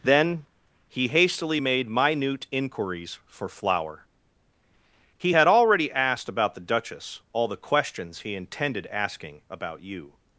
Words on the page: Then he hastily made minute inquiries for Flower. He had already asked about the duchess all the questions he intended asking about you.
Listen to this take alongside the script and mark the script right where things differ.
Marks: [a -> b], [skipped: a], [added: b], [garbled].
Then he hastily made minute inquiries for Flower. He had already asked about the duchess all the questions he intended asking about you.